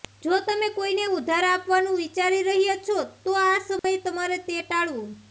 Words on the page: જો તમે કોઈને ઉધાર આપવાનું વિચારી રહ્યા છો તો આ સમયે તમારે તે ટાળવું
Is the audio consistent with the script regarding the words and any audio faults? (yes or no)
no